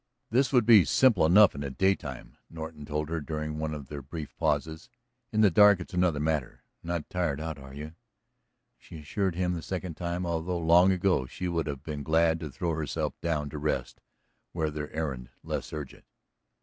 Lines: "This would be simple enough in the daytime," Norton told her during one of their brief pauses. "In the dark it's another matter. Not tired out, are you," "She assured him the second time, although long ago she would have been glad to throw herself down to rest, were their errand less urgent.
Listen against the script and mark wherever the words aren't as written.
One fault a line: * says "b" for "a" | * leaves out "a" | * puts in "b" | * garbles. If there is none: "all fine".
all fine